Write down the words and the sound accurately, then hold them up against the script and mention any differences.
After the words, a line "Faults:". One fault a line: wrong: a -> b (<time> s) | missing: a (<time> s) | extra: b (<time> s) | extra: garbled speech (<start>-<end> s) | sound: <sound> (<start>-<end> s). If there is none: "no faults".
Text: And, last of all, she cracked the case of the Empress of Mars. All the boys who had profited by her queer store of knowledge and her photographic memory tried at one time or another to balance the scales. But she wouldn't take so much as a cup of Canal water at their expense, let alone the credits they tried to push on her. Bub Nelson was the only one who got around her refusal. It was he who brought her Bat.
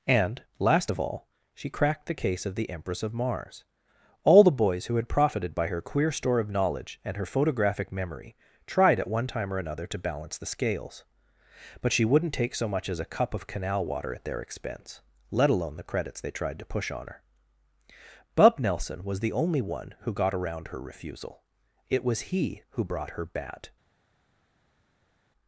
And, last of all, she cracked the case of the Empress of Mars. All the boys who had profited by her queer store of knowledge and her photographic memory tried at one time or another to balance the scales. But she wouldn't take so much as a cup of Canal water at their expense, let alone the credits they tried to push on her. Bub Nelson was the only one who got around her refusal. It was he who brought her Bat.
Faults:
no faults